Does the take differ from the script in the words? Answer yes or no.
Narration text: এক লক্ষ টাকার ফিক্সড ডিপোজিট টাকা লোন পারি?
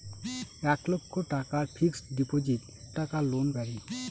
no